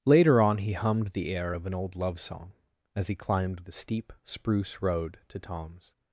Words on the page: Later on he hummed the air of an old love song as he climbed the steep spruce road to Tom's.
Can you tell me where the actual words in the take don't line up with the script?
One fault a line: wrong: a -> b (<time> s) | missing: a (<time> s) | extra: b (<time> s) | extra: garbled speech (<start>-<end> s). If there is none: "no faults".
no faults